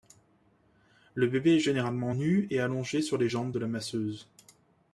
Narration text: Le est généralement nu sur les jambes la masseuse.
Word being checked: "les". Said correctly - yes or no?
yes